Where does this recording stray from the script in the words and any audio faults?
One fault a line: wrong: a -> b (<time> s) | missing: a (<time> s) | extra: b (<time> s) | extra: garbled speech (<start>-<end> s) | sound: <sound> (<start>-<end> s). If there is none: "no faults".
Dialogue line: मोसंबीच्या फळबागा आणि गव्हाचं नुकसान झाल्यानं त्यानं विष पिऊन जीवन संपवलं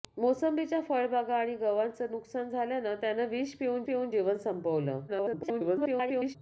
extra: पिऊन (3.8 s)
extra: garbled speech (5.1-6.4 s)